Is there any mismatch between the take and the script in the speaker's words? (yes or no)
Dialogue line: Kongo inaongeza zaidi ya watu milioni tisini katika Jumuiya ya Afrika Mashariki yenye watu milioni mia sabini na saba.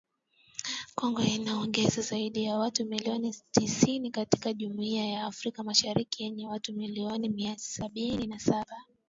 no